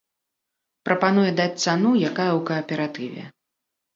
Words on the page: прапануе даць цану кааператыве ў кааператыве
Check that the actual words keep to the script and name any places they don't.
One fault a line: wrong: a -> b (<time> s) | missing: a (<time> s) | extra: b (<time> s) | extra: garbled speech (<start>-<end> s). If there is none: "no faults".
wrong: кааператыве -> якая (2.1 s)